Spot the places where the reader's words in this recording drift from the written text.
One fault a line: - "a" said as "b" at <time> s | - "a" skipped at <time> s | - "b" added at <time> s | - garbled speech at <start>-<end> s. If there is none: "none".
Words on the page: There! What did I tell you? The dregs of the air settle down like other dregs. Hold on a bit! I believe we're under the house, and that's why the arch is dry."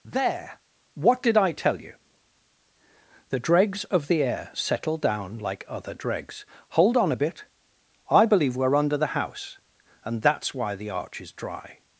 none